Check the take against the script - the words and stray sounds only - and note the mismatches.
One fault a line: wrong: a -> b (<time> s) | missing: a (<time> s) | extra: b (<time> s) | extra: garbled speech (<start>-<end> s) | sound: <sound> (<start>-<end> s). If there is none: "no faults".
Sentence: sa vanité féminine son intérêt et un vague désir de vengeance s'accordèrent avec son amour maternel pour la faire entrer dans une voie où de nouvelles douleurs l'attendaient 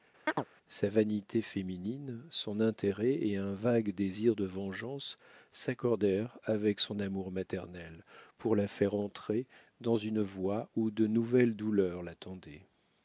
sound: chirp (0.3-0.5 s)